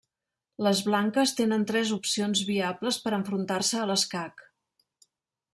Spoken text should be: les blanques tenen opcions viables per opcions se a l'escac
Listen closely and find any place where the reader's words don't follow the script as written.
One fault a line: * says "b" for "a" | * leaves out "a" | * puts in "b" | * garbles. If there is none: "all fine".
* puts in "tres"
* says "enfrontar" for "opcions"